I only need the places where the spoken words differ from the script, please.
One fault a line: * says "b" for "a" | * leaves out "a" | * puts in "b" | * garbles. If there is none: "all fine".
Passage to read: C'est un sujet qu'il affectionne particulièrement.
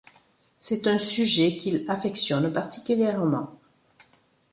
all fine